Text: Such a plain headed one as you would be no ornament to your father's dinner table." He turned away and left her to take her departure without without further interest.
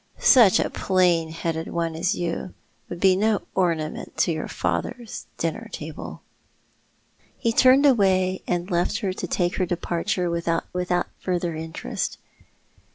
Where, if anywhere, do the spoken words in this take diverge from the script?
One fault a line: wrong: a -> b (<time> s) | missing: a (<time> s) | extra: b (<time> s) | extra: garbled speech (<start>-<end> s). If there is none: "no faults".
no faults